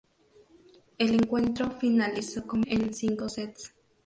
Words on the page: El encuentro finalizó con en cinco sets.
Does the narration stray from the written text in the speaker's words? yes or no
no